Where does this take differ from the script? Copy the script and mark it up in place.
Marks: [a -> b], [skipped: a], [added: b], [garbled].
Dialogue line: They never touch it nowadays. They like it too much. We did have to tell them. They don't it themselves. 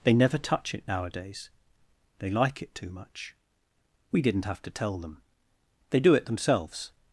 They never touch it nowadays. They like it too much. We [did -> didn't] have to tell them. They [don't -> do] it themselves.